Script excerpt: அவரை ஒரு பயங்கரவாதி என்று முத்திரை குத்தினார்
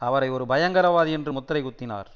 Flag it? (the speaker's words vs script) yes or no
no